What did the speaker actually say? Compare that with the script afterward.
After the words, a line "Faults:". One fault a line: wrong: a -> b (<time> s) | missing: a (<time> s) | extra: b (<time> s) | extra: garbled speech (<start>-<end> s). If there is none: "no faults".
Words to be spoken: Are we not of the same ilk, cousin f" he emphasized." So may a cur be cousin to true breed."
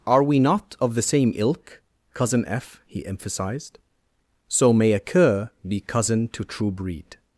Are we not of the same ilk, cousin f" he emphasized." So may a cur be cousin to true breed."
Faults:
no faults